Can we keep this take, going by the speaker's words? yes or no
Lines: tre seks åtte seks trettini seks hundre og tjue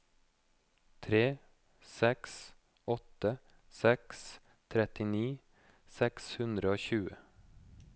yes